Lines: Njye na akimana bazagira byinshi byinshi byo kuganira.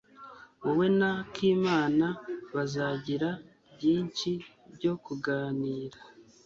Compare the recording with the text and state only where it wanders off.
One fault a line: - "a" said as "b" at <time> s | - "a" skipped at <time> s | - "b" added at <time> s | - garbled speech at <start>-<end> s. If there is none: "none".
- "Njye" said as "Wowe" at 0.6 s
- "byinshi" skipped at 4.3 s